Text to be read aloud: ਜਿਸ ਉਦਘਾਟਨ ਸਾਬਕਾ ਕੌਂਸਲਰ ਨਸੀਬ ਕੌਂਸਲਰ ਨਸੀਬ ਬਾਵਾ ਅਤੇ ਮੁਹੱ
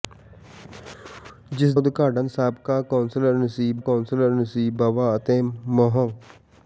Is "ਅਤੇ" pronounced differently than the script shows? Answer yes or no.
no